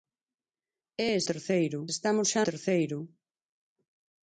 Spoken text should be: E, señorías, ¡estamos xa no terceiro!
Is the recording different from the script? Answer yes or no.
yes